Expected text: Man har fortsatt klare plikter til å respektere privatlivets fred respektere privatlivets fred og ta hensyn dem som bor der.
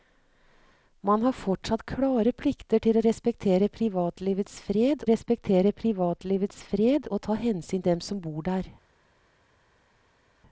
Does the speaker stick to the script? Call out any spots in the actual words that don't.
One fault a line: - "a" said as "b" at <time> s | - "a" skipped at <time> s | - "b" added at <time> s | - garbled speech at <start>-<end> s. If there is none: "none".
none